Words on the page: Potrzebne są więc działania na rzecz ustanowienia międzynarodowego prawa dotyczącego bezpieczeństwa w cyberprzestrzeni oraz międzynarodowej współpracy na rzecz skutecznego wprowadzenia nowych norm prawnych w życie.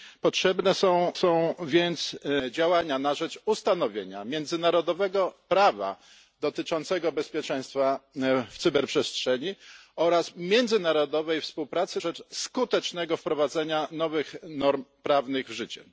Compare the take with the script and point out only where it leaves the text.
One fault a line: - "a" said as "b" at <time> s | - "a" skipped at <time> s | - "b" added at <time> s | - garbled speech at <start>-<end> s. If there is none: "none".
- "są" added at 1.1 s
- "na" skipped at 12.0 s